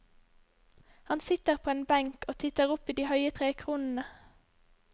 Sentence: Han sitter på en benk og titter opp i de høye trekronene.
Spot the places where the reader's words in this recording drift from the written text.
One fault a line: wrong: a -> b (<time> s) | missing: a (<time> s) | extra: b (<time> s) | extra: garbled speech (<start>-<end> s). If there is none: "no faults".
no faults